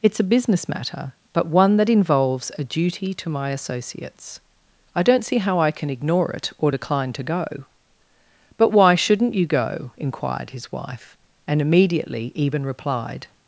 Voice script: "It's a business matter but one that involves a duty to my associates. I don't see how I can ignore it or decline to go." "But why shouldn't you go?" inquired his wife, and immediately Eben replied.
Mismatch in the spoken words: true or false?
false